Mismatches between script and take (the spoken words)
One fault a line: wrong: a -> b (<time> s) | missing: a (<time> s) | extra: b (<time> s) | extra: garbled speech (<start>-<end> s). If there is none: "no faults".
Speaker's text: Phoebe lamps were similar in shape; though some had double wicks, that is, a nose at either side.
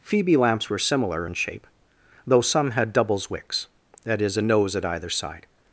wrong: double -> doubles (2.9 s)